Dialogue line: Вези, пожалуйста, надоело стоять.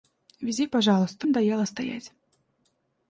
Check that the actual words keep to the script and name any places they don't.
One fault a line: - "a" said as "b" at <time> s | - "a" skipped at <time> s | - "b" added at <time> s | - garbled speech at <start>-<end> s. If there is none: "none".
none